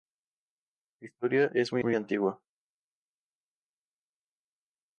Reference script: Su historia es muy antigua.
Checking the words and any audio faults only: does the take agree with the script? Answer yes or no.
no